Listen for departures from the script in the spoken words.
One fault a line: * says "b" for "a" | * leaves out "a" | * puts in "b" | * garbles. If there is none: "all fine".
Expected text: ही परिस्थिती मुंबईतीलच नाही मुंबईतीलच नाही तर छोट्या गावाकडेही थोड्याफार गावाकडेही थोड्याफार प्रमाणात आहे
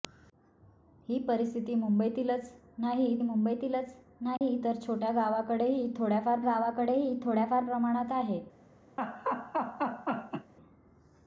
all fine